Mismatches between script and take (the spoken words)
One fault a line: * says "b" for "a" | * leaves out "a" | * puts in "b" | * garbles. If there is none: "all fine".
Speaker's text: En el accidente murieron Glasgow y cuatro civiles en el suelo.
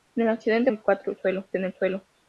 * leaves out "murieron Glasgow"
* says "suelo" for "civiles"